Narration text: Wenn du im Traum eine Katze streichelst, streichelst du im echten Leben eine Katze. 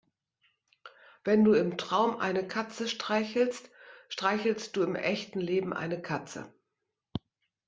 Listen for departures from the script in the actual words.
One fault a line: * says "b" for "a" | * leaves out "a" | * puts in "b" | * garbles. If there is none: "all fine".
all fine